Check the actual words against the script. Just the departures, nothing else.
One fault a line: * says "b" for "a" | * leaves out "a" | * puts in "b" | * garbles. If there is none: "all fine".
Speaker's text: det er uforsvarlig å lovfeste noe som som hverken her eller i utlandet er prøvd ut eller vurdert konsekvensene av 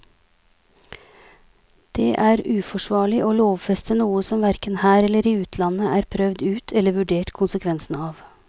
* leaves out "som"